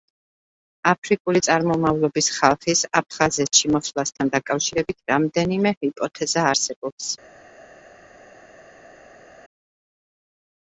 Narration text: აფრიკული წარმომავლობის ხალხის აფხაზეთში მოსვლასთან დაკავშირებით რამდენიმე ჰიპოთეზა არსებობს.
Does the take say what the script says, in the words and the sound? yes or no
yes